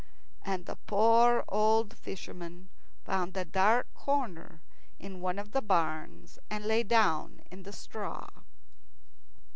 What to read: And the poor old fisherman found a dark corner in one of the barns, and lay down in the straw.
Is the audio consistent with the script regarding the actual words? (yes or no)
yes